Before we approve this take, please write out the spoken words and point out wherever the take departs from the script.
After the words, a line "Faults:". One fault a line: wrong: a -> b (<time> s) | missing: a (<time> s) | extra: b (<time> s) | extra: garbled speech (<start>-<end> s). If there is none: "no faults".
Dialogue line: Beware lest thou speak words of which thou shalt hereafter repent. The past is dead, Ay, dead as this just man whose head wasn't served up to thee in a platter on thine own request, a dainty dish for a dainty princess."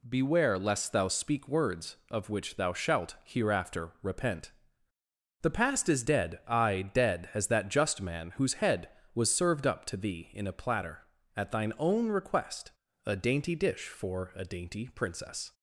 Beware lest thou speak words of which thou shalt hereafter repent. The past is dead, Ay, dead as that just man whose head was served up to thee in a platter at thine own request, a dainty dish for a dainty princess."
Faults:
wrong: this -> that (7.5 s)
wrong: wasn't -> was (9.1 s)
wrong: on -> at (11.3 s)